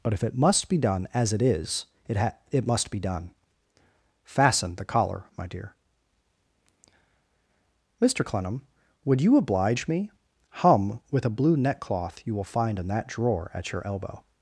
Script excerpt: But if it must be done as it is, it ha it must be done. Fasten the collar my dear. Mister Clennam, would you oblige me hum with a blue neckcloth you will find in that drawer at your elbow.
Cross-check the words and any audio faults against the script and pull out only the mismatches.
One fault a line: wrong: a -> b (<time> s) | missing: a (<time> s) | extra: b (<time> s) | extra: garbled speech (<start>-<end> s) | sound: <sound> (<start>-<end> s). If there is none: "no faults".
no faults